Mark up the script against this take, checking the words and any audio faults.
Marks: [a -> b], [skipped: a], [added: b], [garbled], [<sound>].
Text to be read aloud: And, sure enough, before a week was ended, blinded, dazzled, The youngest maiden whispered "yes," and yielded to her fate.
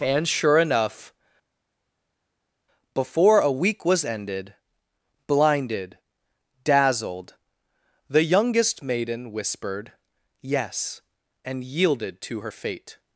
And, sure enough, before a week was ended, blinded, dazzled, The youngest maiden whispered "yes," and yielded to her fate.